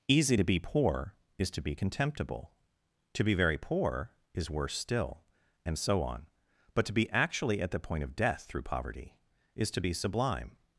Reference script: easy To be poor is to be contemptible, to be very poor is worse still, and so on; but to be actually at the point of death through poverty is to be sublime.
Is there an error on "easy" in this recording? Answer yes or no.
no